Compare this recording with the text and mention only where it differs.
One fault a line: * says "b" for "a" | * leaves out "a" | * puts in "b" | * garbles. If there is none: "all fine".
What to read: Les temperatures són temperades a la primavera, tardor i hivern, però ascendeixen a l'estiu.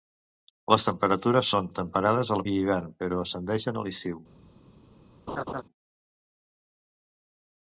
* leaves out "primavera tardor"